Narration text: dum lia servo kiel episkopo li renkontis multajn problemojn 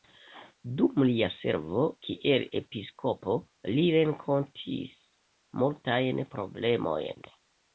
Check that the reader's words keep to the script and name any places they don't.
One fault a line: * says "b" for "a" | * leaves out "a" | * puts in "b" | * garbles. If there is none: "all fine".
all fine